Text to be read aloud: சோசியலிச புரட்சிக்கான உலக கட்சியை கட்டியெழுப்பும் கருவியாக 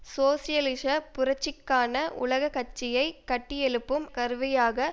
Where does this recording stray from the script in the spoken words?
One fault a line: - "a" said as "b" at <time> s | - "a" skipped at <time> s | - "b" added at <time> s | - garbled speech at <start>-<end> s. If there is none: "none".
none